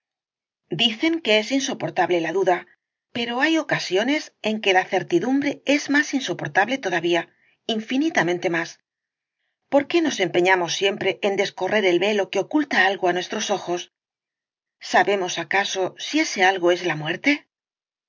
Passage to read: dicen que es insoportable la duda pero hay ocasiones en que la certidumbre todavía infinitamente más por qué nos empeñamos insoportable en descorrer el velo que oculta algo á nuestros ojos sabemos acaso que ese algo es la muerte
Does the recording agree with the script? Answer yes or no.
no